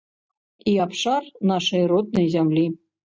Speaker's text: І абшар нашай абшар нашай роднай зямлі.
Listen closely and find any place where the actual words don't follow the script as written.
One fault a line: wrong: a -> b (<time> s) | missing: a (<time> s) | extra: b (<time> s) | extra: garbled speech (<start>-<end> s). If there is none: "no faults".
missing: абшар нашай (1.8 s)